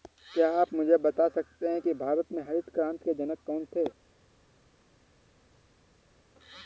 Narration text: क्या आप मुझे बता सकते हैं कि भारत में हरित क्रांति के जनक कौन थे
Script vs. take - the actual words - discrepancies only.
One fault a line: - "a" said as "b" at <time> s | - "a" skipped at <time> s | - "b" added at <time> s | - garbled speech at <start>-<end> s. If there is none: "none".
none